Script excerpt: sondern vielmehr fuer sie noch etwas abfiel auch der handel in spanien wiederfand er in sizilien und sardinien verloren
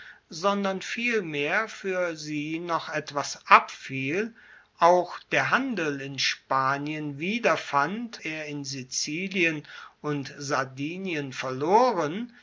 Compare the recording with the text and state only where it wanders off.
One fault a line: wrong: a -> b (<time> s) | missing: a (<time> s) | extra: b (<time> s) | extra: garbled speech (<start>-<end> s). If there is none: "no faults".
no faults